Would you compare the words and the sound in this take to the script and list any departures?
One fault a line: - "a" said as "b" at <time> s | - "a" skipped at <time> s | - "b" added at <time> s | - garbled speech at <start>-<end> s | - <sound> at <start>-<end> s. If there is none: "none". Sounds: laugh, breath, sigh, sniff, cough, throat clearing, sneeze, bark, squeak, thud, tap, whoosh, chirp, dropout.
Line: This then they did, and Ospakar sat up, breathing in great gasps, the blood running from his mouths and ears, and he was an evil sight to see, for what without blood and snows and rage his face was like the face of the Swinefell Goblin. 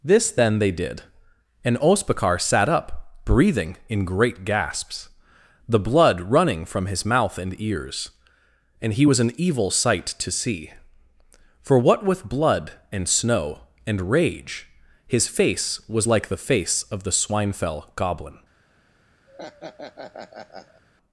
- "mouths" said as "mouth" at 7.0 s
- "without" said as "with" at 12.0 s
- "snows" said as "snow" at 13.1 s
- laugh at 19.3-20.8 s